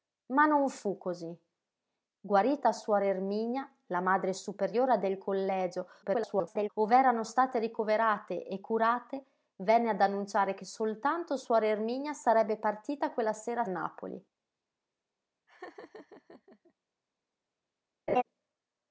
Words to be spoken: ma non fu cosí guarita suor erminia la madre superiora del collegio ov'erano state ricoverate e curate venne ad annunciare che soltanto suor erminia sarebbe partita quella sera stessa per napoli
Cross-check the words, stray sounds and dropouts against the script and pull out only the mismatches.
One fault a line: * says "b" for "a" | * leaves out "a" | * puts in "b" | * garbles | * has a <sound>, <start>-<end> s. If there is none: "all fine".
* garbles
* leaves out "stessa per"
* has a laugh, 15.5-16.7 s
* has a laugh, 18.1-18.2 s